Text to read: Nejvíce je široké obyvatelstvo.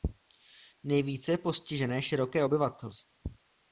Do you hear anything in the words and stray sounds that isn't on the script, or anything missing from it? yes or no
yes